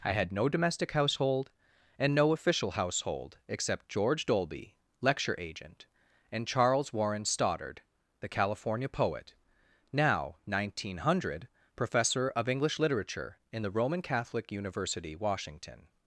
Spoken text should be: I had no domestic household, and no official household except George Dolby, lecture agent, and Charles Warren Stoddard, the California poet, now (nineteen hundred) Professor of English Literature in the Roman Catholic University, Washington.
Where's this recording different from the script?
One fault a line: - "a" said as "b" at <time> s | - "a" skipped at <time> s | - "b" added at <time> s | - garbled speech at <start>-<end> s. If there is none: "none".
none